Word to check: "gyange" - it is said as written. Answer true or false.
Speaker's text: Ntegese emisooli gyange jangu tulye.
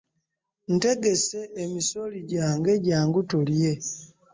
true